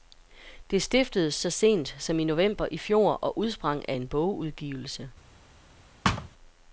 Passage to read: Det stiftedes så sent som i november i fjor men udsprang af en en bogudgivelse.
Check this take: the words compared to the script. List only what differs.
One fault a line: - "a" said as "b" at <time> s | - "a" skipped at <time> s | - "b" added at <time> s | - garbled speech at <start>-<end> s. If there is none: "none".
- "men" said as "og" at 3.1 s
- "en" skipped at 4.1 s